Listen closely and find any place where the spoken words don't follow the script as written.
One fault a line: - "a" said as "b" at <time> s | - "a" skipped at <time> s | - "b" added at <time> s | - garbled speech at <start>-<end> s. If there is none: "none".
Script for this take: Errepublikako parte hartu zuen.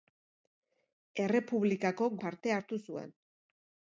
none